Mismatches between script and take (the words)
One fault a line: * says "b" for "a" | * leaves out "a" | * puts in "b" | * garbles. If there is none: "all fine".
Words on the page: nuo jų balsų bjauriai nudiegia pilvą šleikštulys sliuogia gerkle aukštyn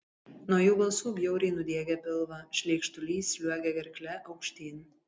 all fine